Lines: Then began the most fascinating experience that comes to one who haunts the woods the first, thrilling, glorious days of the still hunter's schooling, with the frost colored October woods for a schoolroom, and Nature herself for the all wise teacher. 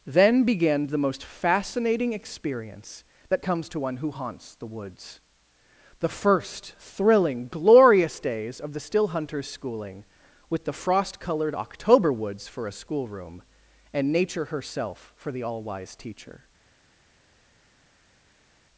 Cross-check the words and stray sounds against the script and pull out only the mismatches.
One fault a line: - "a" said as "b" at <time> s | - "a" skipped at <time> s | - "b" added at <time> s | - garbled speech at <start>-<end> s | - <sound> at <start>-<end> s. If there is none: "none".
none